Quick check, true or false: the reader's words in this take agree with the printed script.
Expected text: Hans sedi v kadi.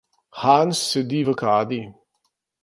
true